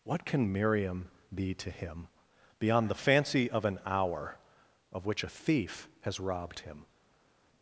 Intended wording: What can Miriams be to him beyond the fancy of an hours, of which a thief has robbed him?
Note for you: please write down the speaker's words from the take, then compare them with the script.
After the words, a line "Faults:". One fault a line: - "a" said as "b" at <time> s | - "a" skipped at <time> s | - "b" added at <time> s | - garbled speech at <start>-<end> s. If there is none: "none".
What can Miriam be to him beyond the fancy of an hour, of which a thief has robbed him?
Faults:
- "Miriams" said as "Miriam" at 0.5 s
- "hours" said as "hour" at 3.9 s